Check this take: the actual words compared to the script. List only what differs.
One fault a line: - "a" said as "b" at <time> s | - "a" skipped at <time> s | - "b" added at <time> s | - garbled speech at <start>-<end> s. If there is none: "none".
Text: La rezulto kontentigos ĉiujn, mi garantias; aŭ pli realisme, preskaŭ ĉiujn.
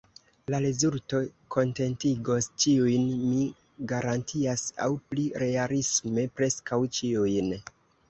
none